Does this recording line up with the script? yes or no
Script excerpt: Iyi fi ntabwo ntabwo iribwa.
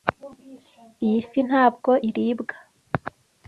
no